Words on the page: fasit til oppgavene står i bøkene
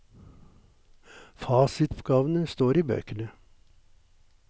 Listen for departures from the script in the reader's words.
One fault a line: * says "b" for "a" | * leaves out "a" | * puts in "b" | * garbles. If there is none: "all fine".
* leaves out "til"